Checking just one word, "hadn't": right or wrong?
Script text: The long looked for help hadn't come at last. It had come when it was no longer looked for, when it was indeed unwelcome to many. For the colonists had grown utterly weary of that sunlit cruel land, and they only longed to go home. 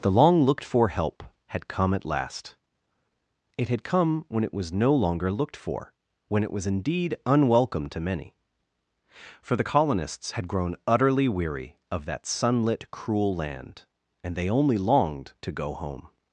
wrong